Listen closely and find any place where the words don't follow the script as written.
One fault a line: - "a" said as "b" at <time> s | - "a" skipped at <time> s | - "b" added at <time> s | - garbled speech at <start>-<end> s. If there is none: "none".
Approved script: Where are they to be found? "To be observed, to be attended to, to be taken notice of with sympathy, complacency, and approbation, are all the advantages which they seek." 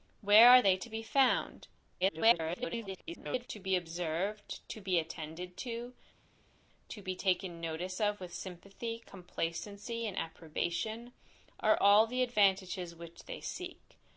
- garbled speech at 2.0-3.5 s